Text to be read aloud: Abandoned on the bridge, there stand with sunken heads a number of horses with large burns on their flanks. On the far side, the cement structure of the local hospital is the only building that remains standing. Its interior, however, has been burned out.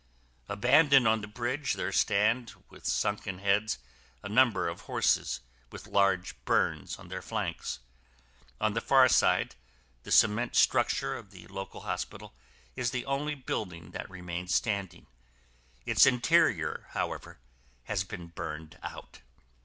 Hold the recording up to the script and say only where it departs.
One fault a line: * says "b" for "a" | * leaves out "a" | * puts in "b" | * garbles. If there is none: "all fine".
all fine